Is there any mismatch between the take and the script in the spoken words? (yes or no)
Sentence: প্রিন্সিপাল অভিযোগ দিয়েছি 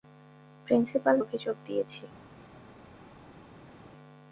no